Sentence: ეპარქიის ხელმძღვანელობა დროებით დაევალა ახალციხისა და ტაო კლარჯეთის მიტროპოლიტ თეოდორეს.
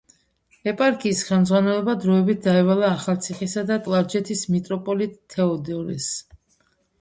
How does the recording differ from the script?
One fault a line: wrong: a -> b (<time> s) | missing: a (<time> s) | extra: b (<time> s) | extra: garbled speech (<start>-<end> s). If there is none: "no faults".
missing: ტაო (3.8 s)